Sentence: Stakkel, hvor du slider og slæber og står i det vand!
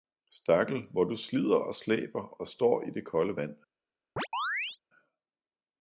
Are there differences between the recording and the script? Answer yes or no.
yes